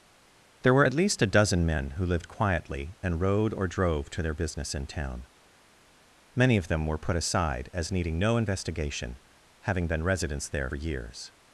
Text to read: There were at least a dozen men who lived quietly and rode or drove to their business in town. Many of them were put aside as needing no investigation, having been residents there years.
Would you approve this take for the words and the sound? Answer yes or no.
yes